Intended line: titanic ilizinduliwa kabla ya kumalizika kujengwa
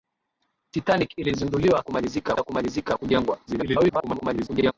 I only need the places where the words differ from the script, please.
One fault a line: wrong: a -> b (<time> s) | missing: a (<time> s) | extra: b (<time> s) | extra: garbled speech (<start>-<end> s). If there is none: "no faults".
wrong: kabla -> kumalizika (1.8 s)
extra: garbled speech (3.5-4.7 s)